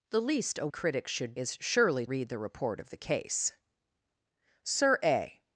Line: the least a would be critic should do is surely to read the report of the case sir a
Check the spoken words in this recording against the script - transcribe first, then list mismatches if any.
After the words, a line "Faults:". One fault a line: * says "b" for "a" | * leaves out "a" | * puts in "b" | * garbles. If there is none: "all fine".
the least a critic should is surely read the report of the case sir a
Faults:
* leaves out "would be"
* leaves out "do"
* leaves out "to"